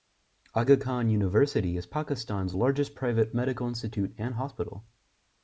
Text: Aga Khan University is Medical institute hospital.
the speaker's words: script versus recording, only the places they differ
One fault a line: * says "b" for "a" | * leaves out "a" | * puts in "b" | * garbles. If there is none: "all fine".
* puts in "Pakistan's largest private"
* puts in "and"